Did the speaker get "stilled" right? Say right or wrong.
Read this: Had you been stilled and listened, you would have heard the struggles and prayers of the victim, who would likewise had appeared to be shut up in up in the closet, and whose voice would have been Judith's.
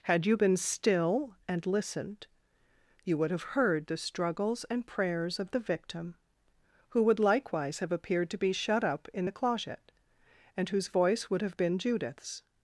wrong